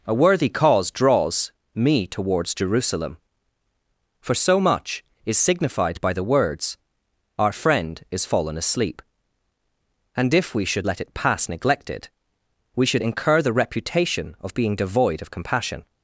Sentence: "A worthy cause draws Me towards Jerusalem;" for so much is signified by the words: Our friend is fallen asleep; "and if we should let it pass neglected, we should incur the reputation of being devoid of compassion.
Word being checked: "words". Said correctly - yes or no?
yes